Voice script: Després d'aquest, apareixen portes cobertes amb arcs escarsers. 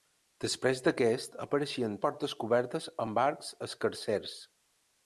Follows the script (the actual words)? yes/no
yes